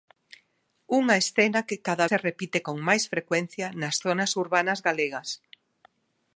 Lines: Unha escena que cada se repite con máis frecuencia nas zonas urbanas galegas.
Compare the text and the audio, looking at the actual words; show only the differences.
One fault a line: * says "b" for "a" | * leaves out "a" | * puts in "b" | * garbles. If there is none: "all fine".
all fine